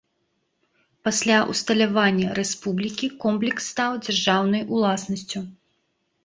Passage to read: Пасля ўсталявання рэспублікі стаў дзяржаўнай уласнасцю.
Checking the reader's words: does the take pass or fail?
fail